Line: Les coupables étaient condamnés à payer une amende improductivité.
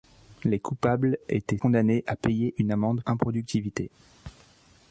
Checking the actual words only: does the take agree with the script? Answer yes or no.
yes